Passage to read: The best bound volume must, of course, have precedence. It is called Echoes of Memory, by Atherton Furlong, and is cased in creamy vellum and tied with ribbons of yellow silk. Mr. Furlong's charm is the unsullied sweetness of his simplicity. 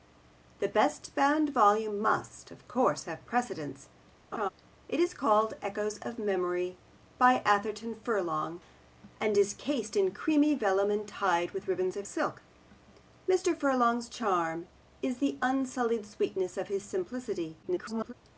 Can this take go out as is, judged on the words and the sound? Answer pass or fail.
fail